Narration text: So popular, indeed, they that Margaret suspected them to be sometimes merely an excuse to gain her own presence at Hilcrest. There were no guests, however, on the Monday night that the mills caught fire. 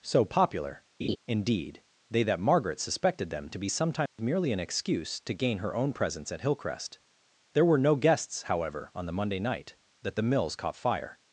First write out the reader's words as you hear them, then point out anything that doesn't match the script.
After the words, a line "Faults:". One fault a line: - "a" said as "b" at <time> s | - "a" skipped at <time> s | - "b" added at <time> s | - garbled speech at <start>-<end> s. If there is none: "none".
So popular, indeed, they that Margaret suspected them to be sometimes merely an excuse to gain her own presence at Hilcrest. There were no guests, however, on the Monday night that the mills caught fire.
Faults:
none